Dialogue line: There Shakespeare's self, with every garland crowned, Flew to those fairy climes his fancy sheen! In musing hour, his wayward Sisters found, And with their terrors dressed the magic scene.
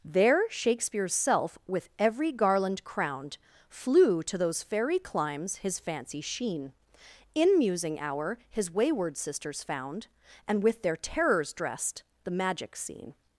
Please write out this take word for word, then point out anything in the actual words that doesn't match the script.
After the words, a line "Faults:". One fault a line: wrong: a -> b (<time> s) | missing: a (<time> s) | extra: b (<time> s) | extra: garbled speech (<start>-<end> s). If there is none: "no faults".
There Shakespeare's self, with every garland crowned, Flew to those fairy climes his fancy sheen! In musing hour, his wayward Sisters found, And with their terrors dressed the magic scene.
Faults:
no faults